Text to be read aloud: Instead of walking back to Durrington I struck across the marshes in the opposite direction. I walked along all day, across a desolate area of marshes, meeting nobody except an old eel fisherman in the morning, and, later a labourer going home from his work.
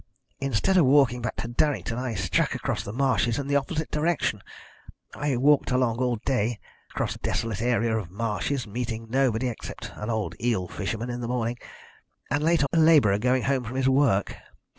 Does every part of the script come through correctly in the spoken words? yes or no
yes